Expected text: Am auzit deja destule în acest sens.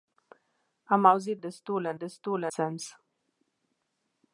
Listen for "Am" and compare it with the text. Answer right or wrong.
right